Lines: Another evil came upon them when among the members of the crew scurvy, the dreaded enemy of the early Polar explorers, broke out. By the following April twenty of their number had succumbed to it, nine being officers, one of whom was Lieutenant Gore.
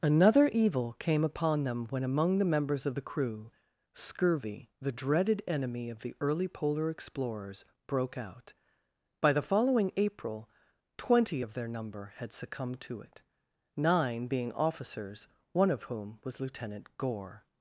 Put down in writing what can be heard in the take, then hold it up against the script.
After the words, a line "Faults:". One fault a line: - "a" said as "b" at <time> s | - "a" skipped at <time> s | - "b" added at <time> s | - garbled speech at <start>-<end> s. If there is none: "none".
Another evil came upon them when among the members of the crew scurvy, the dreaded enemy of the early Polar explorers, broke out. By the following April twenty of their number had succumbed to it, nine being officers, one of whom was Lieutenant Gore.
Faults:
none